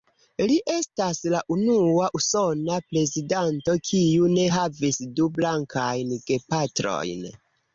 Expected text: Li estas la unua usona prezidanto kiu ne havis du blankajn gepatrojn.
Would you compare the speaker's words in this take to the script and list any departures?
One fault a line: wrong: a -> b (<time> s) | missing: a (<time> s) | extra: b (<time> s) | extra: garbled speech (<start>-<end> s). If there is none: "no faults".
no faults